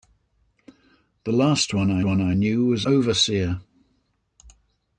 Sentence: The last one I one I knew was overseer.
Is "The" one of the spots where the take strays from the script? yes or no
no